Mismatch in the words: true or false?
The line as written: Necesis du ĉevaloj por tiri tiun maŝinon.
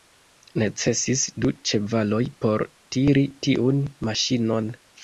false